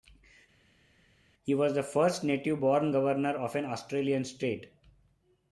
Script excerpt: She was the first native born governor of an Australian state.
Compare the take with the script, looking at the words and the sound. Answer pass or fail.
fail